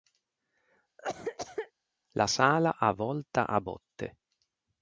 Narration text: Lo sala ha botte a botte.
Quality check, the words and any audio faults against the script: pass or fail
fail